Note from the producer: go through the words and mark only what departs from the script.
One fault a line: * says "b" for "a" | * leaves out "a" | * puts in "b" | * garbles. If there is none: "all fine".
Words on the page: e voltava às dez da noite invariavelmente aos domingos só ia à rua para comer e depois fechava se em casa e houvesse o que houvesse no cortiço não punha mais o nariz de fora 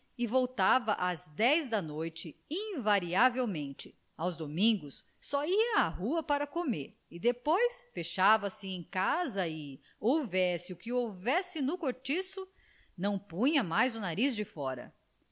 all fine